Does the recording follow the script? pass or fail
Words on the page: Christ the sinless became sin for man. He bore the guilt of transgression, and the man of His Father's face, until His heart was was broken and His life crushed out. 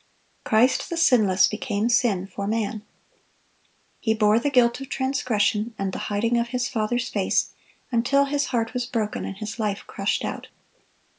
fail